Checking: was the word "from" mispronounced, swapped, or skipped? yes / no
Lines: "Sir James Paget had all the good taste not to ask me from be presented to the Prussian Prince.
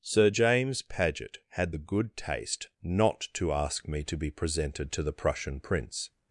yes